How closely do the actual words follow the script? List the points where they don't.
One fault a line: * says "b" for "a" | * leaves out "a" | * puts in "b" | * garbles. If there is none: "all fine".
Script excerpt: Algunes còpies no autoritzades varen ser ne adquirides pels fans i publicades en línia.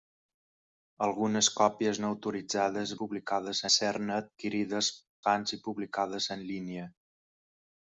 * says "publicades" for "varen"
* leaves out "pels"